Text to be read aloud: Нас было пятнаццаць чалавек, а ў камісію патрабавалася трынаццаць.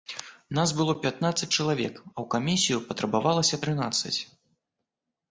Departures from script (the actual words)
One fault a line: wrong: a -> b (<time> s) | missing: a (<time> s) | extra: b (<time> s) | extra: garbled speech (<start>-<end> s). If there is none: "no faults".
no faults